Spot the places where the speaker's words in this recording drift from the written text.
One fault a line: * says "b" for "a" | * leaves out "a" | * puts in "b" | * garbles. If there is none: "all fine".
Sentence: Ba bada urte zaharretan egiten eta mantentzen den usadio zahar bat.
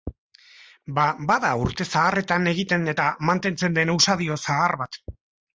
all fine